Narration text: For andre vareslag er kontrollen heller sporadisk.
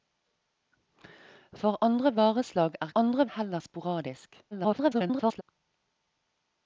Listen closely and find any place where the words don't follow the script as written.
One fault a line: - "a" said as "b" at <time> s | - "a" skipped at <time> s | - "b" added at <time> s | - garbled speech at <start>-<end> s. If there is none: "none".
- "kontrollen" said as "andre" at 3.0 s
- garbled speech at 4.5-5.4 s